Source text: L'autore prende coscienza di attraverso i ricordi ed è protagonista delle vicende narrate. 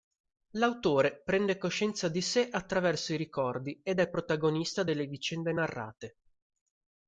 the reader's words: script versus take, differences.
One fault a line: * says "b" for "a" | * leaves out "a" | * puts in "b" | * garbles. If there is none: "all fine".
* puts in "sé"